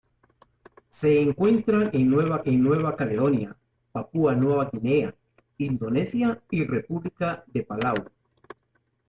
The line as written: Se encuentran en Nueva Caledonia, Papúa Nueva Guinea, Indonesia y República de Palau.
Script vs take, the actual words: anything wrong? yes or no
yes